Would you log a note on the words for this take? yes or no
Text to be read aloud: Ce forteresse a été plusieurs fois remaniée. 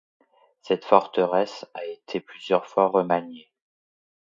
yes